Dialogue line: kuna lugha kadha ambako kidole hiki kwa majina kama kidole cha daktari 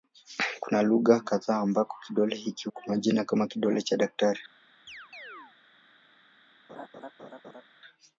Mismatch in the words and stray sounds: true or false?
true